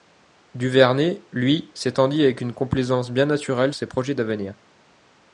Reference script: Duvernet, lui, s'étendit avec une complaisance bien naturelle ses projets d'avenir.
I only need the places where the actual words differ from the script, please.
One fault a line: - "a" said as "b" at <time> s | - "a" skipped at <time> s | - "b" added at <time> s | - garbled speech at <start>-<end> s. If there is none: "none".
none